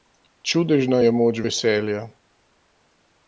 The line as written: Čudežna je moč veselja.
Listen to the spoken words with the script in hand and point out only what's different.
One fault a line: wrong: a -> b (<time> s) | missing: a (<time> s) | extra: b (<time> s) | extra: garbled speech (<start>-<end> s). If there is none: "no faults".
no faults